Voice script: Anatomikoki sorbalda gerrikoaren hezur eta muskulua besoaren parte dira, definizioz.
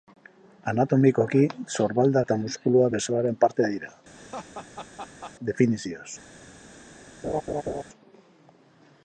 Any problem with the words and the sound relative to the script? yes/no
yes